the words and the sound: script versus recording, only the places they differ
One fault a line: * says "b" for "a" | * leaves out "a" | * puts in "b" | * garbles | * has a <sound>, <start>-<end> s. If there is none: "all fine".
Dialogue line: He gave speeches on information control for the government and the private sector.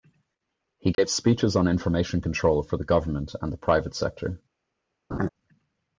* has a dropout, 0.9-1.0 s
* has a laugh, 5.1-5.3 s